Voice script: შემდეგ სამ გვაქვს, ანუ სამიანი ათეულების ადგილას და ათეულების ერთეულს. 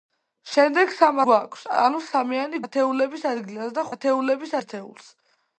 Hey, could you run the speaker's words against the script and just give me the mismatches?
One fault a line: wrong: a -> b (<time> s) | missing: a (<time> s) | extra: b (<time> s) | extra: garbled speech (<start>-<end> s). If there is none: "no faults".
no faults